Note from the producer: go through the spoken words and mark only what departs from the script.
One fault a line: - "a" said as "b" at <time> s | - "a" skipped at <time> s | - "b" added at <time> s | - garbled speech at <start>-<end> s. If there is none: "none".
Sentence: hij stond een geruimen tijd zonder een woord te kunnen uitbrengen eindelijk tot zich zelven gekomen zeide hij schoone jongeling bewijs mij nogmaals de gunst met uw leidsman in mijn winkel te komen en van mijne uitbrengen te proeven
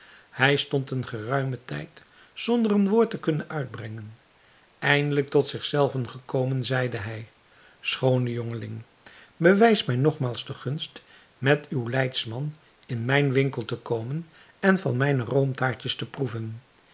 - "uitbrengen" said as "roomtaartjes" at 15.2 s